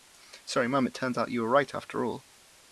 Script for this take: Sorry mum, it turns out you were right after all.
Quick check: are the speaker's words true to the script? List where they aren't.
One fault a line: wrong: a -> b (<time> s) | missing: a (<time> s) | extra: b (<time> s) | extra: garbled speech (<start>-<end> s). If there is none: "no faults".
no faults